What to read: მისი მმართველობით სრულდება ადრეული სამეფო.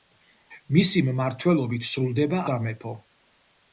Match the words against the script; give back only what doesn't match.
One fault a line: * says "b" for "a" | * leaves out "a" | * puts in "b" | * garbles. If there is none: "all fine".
* leaves out "ადრეული"